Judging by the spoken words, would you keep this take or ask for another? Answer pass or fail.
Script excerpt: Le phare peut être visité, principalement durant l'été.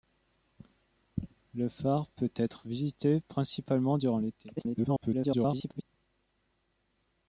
fail